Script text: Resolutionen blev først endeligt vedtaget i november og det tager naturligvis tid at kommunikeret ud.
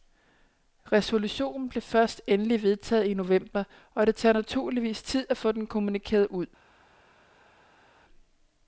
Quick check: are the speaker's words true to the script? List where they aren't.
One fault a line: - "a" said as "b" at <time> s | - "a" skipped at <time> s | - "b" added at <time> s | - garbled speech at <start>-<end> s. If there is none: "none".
- "få den" added at 5.4 s